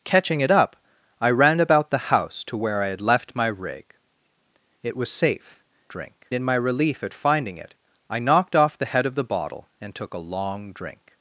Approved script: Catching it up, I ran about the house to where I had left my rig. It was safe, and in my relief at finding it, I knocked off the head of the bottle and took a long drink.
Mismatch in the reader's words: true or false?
true